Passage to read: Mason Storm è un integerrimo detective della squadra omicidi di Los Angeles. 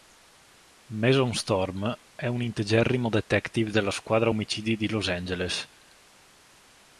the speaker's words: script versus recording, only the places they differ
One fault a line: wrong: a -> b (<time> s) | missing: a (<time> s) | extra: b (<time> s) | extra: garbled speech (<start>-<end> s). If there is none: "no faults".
no faults